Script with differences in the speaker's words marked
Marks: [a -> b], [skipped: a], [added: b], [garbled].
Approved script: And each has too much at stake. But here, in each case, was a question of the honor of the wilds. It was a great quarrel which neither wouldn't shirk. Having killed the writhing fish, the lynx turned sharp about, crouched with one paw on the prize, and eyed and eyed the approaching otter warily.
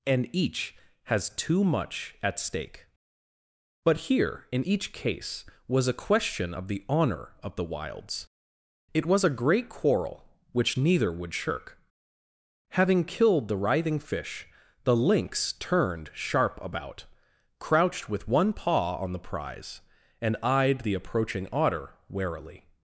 And each has too much at stake. But here, in each case, was a question of the honor of the wilds. It was a great quarrel which neither [wouldn't -> would] shirk. Having killed the writhing fish, the lynx turned sharp about, crouched with one paw on the prize, and eyed [skipped: and eyed] the approaching otter warily.